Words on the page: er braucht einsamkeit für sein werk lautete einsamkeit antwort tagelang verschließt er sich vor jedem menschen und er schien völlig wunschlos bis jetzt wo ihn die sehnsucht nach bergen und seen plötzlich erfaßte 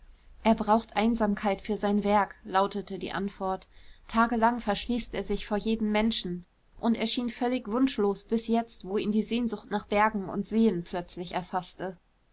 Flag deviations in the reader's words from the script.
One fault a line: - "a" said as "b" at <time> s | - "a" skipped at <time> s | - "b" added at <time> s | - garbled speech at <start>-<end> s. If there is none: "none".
- "einsamkeit" said as "die" at 3.0 s